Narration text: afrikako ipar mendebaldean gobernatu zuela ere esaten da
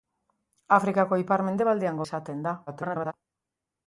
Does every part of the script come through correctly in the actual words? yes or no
no